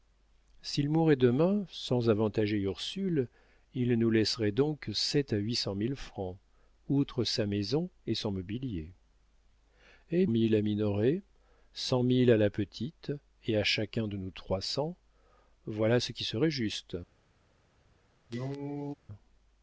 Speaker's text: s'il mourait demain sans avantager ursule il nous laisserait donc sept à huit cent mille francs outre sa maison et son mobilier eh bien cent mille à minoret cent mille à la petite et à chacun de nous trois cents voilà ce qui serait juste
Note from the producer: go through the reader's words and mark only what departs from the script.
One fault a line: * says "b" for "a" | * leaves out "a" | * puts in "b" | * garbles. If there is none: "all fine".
* leaves out "bien cent"